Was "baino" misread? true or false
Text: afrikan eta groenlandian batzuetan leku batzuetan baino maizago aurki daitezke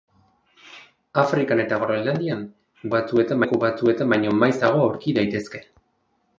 false